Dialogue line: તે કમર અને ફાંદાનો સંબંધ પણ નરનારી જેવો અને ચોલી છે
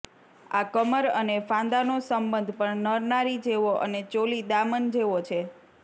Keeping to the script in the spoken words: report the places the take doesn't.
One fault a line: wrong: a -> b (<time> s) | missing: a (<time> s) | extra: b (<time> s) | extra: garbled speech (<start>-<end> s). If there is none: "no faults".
wrong: તે -> આ (0.5 s)
extra: દામન જેવો (4.5 s)